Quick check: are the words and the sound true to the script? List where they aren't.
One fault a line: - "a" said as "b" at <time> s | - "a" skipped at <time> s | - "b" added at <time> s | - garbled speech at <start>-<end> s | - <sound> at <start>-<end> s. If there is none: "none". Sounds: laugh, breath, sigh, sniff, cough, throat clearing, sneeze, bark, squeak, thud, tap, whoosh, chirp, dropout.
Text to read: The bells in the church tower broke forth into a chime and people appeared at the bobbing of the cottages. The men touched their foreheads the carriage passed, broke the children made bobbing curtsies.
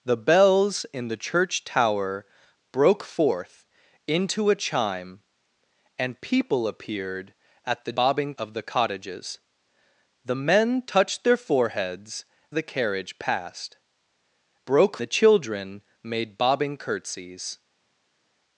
none